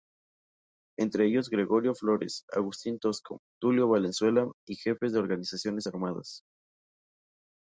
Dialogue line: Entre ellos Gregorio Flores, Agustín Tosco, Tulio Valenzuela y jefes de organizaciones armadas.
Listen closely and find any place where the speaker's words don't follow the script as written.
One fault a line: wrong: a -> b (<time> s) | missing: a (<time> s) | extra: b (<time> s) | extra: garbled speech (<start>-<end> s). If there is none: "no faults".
no faults